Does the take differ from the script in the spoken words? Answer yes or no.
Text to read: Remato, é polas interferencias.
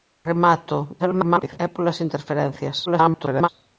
yes